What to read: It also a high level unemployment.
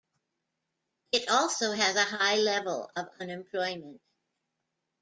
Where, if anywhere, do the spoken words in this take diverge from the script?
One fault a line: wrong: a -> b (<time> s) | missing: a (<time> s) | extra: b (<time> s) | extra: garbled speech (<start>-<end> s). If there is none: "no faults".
extra: has (1.7 s)
extra: of (3.0 s)